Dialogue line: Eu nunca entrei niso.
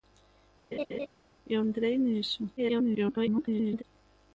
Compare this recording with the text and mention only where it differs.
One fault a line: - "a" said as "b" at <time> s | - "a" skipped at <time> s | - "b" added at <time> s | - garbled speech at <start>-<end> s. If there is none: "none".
- "nunca" skipped at 1.6 s
- garbled speech at 2.6-3.8 s